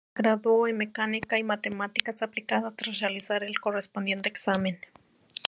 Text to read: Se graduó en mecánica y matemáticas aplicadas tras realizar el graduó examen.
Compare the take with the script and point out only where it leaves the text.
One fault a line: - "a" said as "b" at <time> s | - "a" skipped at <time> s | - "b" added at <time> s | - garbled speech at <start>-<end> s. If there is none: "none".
- "graduó" said as "correspondiente" at 3.6 s